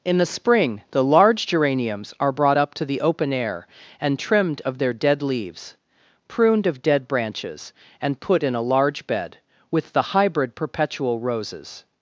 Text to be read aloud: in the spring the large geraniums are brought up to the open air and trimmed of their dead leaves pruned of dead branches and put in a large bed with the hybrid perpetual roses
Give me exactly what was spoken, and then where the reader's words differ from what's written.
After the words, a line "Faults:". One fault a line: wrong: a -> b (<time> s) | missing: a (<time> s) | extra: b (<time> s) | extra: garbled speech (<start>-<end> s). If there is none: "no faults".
in the spring the large geraniums are brought up to the open air and trimmed of their dead leaves pruned of dead branches and put in a large bed with the hybrid perpetual roses
Faults:
no faults